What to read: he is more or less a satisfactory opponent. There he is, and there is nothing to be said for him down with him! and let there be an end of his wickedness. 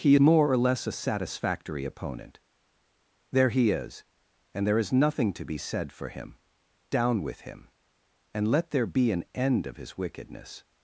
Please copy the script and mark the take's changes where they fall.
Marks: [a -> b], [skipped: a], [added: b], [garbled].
he [skipped: is] more or less a satisfactory opponent. There he is, and there is nothing to be said for him down with him! and let there be an end of his wickedness.